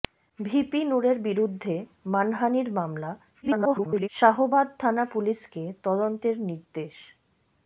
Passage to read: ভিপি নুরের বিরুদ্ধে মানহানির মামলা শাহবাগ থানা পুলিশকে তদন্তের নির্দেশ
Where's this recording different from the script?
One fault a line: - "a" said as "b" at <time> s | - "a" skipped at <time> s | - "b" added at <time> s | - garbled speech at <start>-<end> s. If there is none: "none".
- garbled speech at 3.4-4.1 s